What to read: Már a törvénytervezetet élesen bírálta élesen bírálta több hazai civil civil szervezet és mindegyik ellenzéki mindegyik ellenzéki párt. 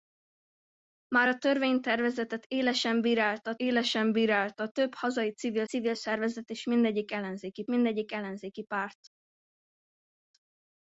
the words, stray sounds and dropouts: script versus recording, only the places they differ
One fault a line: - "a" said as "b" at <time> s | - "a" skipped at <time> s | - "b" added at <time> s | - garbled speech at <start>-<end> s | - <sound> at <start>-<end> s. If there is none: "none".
none